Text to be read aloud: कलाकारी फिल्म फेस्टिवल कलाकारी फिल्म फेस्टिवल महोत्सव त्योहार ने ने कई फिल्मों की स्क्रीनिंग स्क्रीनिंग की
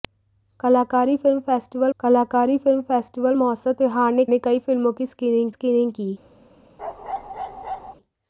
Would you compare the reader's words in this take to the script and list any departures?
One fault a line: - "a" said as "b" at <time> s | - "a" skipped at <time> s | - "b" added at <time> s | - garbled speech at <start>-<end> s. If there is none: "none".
none